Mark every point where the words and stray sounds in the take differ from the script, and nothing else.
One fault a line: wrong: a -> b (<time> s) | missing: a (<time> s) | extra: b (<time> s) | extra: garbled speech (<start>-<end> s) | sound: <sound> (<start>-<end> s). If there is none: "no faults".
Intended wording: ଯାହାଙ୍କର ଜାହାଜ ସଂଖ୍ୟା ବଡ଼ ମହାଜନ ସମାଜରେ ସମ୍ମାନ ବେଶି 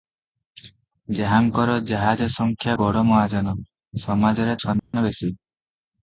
sound: dropout (4.8-4.9 s)